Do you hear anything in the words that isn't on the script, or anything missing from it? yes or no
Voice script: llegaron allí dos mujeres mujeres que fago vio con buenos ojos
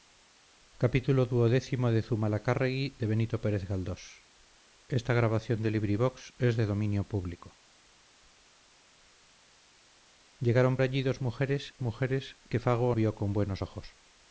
no